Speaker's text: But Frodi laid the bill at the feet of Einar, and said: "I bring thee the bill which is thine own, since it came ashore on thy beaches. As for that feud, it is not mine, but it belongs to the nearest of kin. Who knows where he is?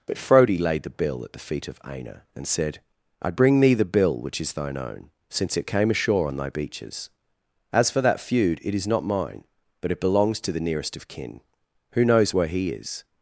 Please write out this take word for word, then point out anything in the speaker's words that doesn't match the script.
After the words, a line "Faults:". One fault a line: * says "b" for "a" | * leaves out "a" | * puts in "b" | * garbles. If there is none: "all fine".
But Frodi laid the bill at the feet of Einar, and said: "I bring thee the bill which is thine own, since it came ashore on thy beaches. As for that feud, it is not mine, but it belongs to the nearest of kin. Who knows where he is?
Faults:
all fine